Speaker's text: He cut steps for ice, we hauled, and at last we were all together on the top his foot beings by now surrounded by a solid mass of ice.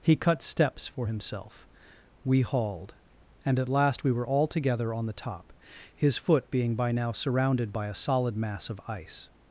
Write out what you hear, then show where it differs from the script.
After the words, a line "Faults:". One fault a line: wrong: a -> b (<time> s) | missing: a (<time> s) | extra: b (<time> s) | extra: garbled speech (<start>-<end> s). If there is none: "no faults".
He cut steps for himself, we hauled, and at last we were all together on the top his foot being by now surrounded by a solid mass of ice.
Faults:
wrong: ice -> himself (1.0 s)
wrong: beings -> being (6.5 s)